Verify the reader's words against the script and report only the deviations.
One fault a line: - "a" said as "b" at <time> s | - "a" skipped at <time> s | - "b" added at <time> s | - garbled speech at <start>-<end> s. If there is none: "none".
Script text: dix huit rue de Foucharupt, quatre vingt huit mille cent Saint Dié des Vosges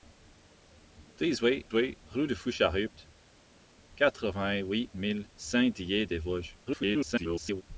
- "huit" added at 1.7 s
- "cent" skipped at 5.3 s
- garbled speech at 6.7-7.6 s